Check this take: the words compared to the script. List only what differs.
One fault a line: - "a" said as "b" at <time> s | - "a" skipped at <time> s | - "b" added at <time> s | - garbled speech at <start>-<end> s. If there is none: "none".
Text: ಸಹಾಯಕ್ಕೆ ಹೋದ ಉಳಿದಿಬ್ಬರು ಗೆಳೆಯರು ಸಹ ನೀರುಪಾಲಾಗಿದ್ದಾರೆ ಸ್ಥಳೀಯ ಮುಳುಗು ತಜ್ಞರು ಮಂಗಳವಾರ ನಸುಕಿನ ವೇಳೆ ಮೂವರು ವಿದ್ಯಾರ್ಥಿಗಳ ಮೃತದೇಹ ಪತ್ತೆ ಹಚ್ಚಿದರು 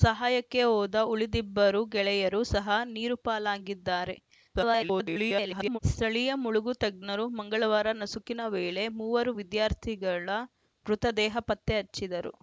- garbled speech at 4.5-5.8 s